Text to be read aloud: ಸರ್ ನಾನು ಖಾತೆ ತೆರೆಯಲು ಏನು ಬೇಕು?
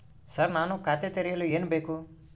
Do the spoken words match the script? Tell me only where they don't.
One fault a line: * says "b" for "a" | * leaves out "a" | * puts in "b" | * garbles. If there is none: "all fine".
all fine